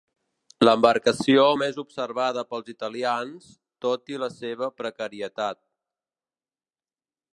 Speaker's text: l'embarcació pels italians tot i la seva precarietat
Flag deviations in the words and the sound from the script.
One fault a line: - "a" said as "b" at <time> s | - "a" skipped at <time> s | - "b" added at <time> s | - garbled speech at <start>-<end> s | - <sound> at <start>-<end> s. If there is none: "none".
- "més observada" added at 1.6 s